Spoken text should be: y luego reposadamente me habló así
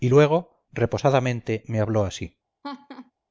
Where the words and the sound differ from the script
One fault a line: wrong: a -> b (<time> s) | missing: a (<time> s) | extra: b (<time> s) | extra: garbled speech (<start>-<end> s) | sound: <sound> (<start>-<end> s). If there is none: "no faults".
sound: laugh (2.6-3.1 s)